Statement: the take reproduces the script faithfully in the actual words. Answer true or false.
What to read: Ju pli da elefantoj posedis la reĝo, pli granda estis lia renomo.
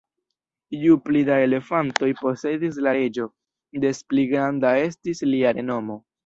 false